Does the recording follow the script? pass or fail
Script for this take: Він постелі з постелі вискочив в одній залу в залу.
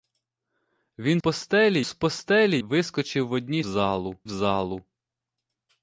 pass